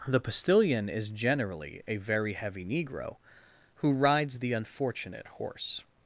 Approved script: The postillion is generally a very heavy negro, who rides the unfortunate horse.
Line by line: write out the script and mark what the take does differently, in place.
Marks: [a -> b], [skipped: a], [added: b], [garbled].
The postillion is generally a very heavy negro, who rides the unfortunate horse.